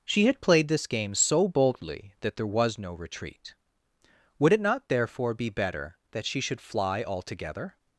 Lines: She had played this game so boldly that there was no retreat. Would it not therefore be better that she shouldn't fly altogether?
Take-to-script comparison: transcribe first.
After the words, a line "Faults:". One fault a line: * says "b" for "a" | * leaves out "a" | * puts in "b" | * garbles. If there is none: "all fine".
She had played this game so boldly that there was no retreat. Would it not therefore be better that she should fly altogether?
Faults:
* says "should" for "shouldn't"